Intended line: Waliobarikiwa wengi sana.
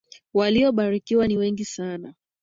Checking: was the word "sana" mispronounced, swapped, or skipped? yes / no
no